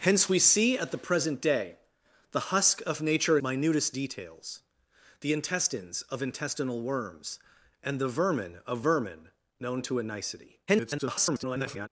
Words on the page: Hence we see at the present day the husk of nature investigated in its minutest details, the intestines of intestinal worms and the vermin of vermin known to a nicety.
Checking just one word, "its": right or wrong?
wrong